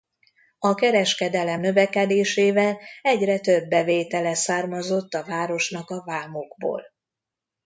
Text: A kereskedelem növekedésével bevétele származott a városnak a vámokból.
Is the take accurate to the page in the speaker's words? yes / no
no